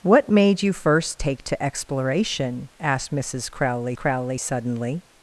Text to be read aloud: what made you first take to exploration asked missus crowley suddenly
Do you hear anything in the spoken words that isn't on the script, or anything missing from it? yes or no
yes